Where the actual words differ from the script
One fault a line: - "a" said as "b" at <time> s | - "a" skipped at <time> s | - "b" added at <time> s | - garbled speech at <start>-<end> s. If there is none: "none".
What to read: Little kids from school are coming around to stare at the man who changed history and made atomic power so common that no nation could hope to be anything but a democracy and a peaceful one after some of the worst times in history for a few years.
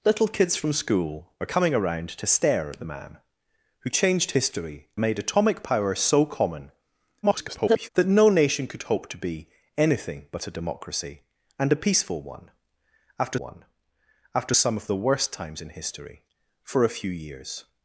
- "and" skipped at 4.9 s
- garbled speech at 7.2-7.9 s
- "one after" added at 13.4 s